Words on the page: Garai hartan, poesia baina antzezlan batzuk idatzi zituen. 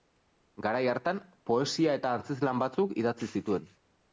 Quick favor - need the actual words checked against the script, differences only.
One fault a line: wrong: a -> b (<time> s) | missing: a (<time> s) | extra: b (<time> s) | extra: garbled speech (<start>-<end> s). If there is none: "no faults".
wrong: baina -> eta (2.0 s)